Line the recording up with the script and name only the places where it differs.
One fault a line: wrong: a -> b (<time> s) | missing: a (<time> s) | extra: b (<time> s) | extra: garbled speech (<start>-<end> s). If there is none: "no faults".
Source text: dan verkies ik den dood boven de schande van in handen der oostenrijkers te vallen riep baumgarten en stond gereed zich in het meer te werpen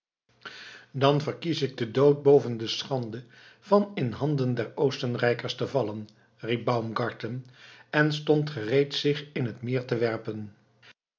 no faults